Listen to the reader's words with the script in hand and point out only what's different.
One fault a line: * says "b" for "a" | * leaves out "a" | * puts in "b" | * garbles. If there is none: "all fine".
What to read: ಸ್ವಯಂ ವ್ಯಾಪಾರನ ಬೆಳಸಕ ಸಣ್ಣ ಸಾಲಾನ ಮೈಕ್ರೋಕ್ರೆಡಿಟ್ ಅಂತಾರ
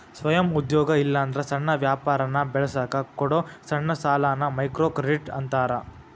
* puts in "ಉದ್ಯೋಗ ಇಲ್ಲಾಂದ್ರ ಸಣ್ಣ"
* puts in "ಕೊಡೊ"